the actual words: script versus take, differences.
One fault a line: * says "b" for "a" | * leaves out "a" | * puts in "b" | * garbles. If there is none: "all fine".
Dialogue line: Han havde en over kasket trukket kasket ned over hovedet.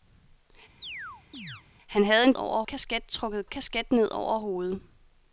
all fine